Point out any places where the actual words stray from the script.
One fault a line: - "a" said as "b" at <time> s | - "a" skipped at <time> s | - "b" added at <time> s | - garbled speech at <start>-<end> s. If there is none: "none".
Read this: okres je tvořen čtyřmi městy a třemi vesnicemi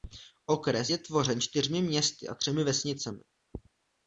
none